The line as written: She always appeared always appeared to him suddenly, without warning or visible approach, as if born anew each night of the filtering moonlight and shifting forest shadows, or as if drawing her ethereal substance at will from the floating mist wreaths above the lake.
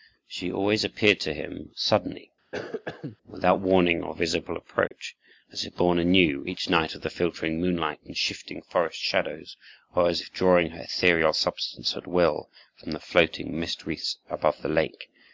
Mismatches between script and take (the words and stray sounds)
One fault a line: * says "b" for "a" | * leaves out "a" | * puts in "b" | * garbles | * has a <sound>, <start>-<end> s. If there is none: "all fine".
* leaves out "always appeared"
* has a cough, 2.5-3.2 s
* has a dropout, 4.9-4.9 s